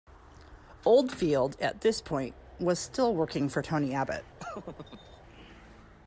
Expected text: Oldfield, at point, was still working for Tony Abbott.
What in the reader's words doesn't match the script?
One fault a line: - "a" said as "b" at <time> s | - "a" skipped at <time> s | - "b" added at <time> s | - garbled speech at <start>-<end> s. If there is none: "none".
- "this" added at 1.8 s